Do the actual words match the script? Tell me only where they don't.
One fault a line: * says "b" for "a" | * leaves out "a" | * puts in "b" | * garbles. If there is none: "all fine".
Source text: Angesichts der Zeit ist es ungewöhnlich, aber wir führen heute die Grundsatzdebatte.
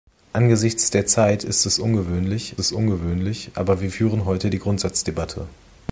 * puts in "es ungewöhnlich"